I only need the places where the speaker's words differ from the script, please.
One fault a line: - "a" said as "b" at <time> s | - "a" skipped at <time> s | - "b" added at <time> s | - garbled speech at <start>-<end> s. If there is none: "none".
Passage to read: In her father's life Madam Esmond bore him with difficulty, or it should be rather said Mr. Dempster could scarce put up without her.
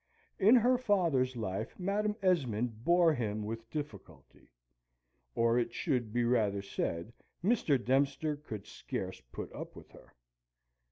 - "without" said as "with" at 9.7 s